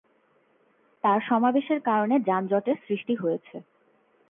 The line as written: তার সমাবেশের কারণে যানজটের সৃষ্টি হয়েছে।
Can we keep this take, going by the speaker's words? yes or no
yes